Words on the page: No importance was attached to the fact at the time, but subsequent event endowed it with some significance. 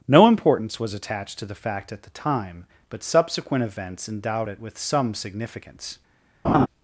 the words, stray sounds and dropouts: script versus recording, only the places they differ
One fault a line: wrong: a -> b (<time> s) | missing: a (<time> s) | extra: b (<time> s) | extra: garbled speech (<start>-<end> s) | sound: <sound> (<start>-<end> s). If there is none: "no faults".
wrong: event -> events (3.6 s)
sound: laugh (6.4-6.7 s)